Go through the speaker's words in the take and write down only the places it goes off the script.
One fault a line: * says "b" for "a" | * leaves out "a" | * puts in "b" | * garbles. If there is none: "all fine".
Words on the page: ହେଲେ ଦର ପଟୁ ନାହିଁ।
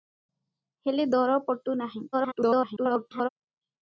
* garbles